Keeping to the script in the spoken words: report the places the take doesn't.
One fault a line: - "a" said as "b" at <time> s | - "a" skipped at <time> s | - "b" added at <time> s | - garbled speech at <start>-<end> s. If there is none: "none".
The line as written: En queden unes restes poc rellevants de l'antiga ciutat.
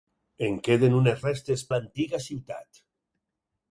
- "poc rellevants de" skipped at 1.6 s